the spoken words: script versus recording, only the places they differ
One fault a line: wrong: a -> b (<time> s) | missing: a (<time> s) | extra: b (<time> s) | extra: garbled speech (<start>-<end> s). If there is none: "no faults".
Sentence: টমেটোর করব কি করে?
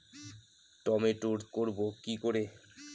no faults